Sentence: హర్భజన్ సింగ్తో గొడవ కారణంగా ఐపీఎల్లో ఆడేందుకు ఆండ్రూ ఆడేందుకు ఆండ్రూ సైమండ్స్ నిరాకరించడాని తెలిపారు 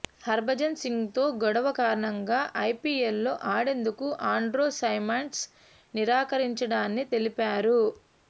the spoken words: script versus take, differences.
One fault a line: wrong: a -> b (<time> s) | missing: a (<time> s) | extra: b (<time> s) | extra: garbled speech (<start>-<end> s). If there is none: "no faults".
missing: ఆడేందుకు ఆండ్రూ (4.7 s)